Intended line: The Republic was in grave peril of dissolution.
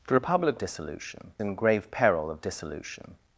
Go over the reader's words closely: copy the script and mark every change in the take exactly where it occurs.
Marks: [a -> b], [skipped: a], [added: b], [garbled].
The Republic [was -> dissolution] in grave peril of dissolution.